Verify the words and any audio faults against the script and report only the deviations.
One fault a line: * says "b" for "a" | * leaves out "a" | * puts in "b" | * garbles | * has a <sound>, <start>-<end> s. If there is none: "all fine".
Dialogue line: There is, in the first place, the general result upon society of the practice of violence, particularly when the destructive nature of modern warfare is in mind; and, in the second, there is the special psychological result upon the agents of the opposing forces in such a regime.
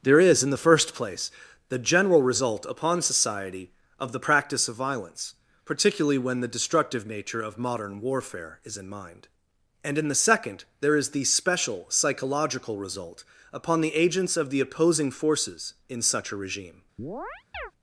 * has a chirp, 17.0-17.7 s